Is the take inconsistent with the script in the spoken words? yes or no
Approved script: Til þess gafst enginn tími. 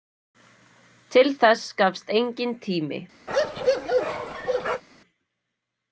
no